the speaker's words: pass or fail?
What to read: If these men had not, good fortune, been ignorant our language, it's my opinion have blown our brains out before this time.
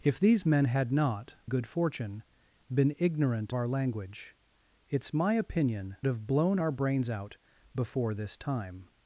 pass